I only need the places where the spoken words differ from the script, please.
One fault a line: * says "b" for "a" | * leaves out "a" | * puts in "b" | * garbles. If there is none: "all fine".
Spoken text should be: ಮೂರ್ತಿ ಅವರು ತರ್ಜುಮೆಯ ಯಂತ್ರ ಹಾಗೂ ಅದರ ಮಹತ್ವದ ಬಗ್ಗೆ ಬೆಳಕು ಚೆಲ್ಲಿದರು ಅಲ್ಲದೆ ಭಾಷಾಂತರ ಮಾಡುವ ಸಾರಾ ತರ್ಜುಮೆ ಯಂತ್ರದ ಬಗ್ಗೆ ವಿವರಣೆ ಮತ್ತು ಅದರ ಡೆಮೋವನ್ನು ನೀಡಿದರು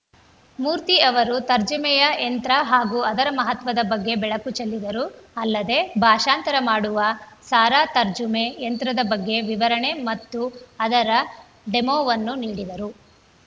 all fine